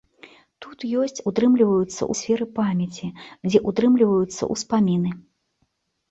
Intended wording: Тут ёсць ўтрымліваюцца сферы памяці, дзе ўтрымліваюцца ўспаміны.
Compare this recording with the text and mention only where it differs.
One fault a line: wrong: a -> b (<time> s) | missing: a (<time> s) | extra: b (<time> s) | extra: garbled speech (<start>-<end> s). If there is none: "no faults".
no faults